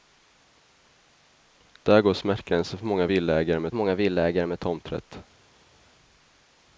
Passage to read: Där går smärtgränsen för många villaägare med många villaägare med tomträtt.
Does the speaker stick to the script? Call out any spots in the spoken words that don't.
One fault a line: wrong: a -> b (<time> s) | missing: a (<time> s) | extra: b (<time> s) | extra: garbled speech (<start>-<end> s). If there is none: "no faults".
no faults